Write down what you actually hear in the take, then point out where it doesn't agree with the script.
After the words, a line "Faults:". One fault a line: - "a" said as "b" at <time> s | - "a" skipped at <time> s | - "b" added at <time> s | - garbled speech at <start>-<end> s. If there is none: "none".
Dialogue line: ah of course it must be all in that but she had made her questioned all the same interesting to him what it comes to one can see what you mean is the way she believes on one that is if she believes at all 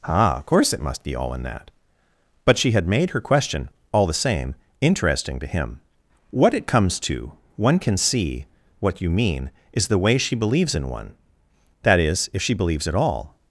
ah of course it must be all in that but she had made her question all the same interesting to him what it comes to one can see what you mean is the way she believes in one that is if she believes at all
Faults:
- "questioned" said as "question" at 3.2 s
- "on" said as "in" at 10.7 s